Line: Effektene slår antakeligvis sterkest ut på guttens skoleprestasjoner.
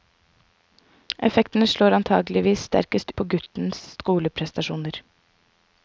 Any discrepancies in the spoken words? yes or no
yes